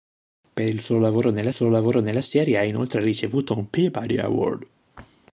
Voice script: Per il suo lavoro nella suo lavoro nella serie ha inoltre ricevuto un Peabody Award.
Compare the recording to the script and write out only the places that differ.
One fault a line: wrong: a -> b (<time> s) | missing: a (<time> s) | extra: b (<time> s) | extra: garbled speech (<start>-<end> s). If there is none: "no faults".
no faults